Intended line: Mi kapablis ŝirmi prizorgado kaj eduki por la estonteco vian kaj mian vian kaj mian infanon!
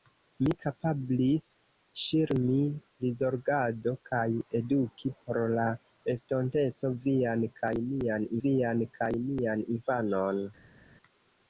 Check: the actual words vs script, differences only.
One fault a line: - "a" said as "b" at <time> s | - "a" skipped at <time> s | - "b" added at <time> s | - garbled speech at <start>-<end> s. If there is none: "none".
none